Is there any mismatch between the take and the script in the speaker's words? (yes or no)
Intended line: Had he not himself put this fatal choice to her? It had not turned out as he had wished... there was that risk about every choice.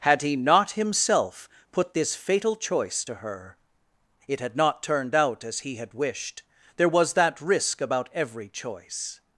no